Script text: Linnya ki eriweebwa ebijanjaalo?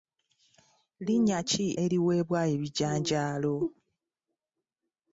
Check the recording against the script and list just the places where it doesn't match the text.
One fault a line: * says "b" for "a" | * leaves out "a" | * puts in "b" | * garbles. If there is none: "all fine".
all fine